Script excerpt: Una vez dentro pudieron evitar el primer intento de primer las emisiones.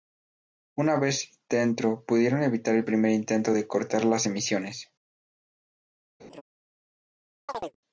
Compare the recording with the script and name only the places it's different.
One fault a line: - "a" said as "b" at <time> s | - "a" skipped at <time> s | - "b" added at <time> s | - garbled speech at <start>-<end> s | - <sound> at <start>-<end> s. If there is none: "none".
- "primer" said as "cortar" at 3.7 s
- laugh at 6.2-6.4 s
- chirp at 7.5-7.8 s